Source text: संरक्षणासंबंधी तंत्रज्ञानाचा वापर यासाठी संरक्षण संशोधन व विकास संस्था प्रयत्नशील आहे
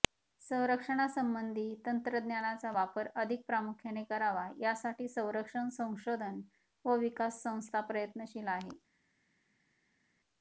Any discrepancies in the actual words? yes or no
yes